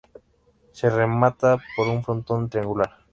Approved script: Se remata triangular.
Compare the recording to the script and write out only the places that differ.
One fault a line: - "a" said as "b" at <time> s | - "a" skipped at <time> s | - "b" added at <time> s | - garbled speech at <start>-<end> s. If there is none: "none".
- "por un frontón" added at 1.8 s